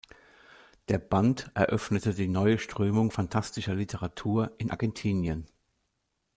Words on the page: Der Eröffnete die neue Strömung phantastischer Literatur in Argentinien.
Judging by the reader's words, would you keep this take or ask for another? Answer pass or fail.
fail